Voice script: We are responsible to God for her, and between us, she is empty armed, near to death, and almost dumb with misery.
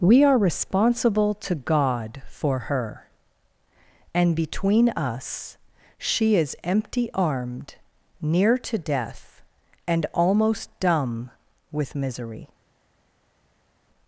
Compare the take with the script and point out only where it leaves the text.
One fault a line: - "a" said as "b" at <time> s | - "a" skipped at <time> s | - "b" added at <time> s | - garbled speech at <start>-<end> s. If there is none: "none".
none